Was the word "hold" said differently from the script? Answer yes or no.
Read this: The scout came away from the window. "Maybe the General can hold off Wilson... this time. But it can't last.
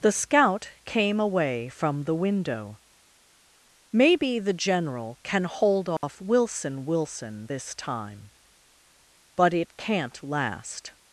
no